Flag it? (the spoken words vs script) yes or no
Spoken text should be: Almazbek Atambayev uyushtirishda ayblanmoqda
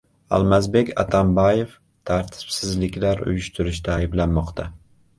yes